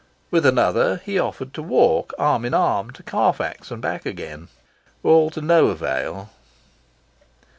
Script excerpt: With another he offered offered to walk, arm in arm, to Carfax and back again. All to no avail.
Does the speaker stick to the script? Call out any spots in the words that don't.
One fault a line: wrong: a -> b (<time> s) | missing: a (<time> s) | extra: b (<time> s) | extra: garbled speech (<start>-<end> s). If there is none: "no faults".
missing: offered (1.5 s)